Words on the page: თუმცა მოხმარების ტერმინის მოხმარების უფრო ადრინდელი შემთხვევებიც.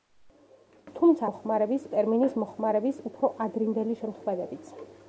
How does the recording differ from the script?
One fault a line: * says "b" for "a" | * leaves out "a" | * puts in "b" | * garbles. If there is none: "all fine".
all fine